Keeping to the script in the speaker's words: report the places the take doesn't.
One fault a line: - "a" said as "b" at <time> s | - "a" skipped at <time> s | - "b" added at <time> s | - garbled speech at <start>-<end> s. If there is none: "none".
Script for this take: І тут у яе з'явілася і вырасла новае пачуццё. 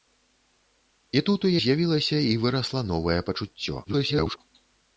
- "яе" skipped at 1.5 s
- garbled speech at 3.8-4.4 s